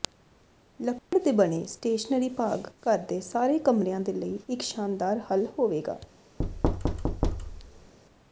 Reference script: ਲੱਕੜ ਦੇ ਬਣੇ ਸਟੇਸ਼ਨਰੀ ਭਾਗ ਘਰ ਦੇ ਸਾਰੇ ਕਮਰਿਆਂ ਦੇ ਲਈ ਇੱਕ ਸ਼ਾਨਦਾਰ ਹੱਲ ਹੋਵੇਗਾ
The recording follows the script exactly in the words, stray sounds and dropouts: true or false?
false